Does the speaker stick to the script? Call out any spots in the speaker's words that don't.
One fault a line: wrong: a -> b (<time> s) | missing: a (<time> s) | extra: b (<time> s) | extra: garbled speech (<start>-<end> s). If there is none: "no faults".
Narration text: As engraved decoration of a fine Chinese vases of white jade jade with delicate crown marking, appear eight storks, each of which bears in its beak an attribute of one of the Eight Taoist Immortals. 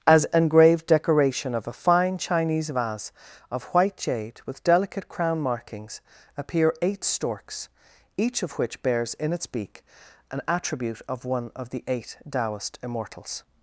wrong: vases -> vase (2.7 s)
missing: jade (4.4 s)
wrong: marking -> markings (5.4 s)